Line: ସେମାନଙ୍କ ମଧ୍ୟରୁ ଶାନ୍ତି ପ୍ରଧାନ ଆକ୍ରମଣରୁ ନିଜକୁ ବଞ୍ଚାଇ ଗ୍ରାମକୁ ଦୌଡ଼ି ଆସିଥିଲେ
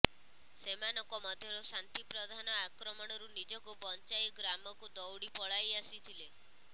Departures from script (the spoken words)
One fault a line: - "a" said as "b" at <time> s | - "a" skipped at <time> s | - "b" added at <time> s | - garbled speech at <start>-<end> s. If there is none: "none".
- "ପଳାଇ" added at 5.4 s